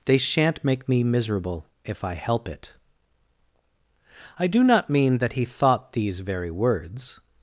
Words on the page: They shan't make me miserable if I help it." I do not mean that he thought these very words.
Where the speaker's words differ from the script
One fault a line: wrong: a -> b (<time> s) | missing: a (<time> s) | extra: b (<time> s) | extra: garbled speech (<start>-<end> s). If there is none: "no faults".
no faults